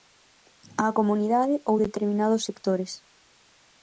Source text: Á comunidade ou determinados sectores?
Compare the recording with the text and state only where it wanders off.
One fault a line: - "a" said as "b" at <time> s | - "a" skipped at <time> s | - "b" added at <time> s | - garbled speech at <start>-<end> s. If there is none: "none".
none